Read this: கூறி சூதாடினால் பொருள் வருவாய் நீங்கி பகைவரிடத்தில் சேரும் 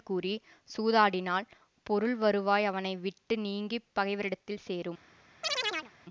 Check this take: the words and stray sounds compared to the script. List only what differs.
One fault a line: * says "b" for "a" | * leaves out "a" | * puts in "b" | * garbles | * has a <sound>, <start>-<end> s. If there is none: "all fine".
* puts in "அவனை விட்டு"
* has a chirp, 5.4-5.9 s